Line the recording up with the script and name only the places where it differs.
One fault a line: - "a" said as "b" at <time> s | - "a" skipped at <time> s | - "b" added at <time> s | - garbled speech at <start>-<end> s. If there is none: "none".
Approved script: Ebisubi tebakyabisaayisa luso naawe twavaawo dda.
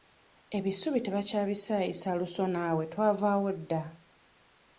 none